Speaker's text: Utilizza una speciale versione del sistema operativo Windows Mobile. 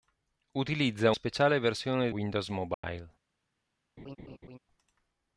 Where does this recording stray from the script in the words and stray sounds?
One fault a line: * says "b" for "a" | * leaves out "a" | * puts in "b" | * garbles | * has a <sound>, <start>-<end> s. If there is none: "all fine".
* leaves out "una"
* leaves out "del sistema operativo"
* has a dropout, 2.7-2.8 s
* has a laugh, 4.0-4.6 s